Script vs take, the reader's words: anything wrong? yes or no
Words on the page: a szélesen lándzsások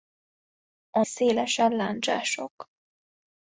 no